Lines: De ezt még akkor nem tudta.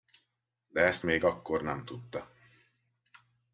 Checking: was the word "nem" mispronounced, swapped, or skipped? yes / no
no